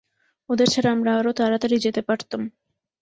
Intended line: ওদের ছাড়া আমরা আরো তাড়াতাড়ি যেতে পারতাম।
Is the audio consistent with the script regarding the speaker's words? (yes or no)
yes